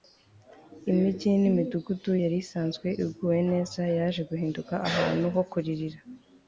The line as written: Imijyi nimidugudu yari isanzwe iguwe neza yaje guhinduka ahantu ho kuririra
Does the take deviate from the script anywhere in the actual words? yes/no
no